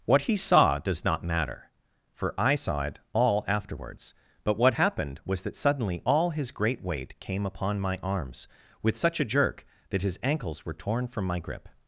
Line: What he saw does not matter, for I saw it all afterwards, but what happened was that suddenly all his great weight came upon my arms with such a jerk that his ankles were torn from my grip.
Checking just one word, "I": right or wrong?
right